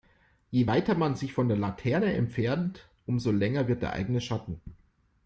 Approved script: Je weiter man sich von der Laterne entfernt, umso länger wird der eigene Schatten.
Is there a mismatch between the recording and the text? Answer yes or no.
no